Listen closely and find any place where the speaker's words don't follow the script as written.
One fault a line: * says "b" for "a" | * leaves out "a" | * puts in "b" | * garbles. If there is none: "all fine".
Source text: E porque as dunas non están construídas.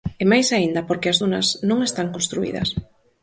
* puts in "máis aínda"